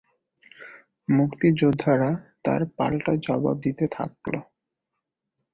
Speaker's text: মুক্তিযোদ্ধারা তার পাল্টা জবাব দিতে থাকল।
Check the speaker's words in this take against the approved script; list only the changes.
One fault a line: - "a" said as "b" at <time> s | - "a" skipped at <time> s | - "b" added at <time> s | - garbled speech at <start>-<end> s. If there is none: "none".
none